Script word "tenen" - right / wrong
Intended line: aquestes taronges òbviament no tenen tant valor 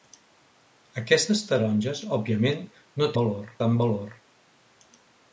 wrong